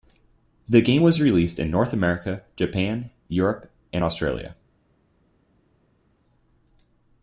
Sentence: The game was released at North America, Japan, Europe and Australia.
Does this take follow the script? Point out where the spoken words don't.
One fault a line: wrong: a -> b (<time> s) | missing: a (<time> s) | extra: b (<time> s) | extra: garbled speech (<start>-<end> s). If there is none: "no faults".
wrong: at -> in (1.6 s)